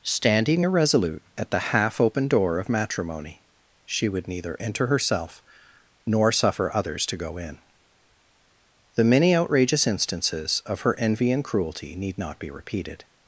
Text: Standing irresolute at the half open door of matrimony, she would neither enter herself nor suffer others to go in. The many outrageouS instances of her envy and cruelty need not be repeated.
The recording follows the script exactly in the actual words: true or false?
true